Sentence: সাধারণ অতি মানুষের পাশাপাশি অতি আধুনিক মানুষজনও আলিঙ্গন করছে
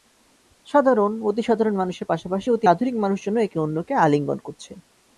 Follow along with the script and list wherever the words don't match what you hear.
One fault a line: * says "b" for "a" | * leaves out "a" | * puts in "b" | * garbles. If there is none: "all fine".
* puts in "সাধারণ"
* puts in "একে অন্যকে"